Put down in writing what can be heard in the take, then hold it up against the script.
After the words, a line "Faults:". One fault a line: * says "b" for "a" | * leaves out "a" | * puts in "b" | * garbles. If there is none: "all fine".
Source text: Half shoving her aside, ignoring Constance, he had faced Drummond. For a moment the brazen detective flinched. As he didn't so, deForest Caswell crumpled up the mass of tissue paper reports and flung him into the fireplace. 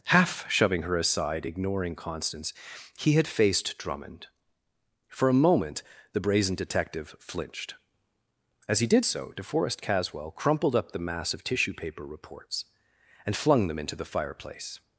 Half shoving her aside, ignoring Constance, he had faced Drummond. For a moment the brazen detective flinched. As he did so, deForest Caswell crumpled up the mass of tissue paper reports and flung them into the fireplace.
Faults:
* says "did" for "didn't"
* says "them" for "him"